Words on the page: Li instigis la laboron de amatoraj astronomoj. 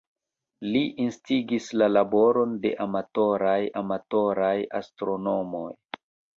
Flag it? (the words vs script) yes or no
yes